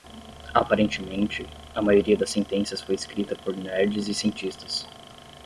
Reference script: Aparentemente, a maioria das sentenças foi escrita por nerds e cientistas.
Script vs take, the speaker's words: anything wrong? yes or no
no